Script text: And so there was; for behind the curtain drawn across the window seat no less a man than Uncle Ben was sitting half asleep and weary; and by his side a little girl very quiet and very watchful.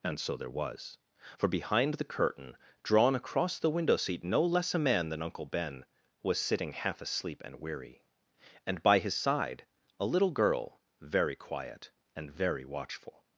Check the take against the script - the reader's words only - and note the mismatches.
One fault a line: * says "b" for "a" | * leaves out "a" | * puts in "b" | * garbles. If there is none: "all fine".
all fine